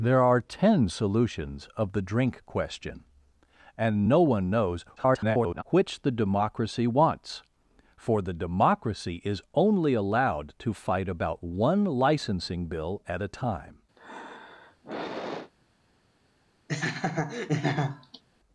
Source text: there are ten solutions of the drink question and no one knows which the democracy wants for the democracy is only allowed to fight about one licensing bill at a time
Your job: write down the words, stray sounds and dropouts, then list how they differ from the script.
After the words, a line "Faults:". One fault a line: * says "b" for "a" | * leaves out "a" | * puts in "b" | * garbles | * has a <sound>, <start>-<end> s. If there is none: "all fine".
there are ten solutions of the drink question and no one knows [garbled] which the democracy wants for the democracy is only allowed to fight about one licensing bill at a time
Faults:
* garbles
* has a sigh, 14.0-15.5 s
* has a laugh, 16.7-18.2 s